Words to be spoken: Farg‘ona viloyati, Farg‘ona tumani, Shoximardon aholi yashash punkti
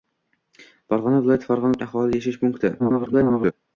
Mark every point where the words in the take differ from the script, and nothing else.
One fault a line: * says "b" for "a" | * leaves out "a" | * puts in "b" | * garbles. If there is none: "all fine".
* leaves out "tumani Shoximardon"
* garbles